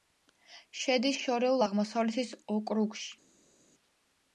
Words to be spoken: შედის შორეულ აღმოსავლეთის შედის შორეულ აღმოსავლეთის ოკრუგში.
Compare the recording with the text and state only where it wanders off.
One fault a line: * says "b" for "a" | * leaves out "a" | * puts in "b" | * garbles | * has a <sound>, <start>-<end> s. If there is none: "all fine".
* leaves out "შედის შორეულ აღმოსავლეთის"